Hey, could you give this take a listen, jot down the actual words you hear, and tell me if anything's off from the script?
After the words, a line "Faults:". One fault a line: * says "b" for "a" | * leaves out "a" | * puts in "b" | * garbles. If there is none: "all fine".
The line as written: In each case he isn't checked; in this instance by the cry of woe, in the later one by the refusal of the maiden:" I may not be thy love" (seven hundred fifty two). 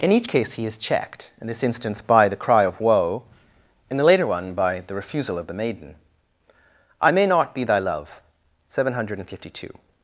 In each case he is checked; in this instance by the cry of woe, in the later one by the refusal of the maiden:" I may not be thy love" (seven hundred fifty two).
Faults:
* says "is" for "isn't"